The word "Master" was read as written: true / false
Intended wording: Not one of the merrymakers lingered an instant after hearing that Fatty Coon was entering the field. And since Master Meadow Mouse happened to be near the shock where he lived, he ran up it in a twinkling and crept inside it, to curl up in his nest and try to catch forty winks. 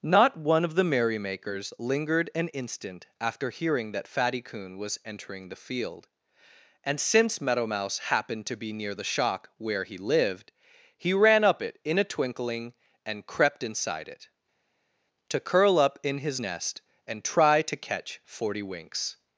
false